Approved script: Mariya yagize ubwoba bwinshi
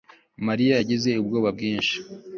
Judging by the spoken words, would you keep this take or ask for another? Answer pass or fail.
pass